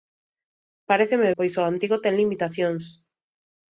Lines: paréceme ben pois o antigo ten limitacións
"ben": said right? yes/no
no